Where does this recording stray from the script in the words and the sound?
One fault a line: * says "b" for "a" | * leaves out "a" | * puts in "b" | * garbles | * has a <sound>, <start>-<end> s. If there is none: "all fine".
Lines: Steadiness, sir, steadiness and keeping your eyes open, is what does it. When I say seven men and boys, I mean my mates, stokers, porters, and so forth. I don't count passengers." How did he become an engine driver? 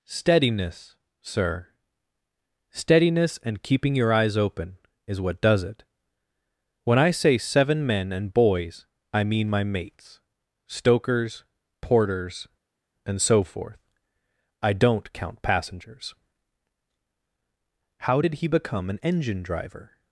all fine